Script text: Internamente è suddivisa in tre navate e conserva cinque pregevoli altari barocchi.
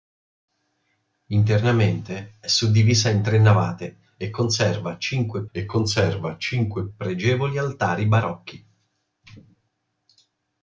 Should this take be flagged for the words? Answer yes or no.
yes